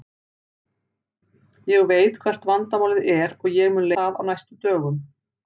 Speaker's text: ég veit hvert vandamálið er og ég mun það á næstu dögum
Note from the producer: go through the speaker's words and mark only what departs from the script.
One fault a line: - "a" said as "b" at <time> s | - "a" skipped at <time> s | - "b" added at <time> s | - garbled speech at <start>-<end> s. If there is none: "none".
none